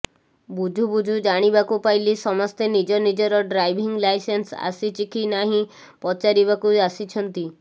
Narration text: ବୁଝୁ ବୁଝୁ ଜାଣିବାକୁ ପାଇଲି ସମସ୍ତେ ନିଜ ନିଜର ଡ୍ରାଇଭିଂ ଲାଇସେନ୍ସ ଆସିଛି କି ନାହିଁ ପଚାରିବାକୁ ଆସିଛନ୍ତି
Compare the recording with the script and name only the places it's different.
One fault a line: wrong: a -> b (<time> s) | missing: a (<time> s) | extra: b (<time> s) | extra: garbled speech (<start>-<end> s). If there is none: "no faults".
no faults